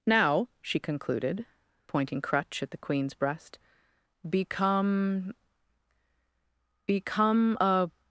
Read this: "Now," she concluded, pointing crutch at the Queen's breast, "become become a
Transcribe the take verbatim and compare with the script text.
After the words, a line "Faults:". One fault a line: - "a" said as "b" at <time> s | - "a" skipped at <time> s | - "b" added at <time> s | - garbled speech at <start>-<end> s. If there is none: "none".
"Now," she concluded, pointing crutch at the Queen's breast, "become become a
Faults:
none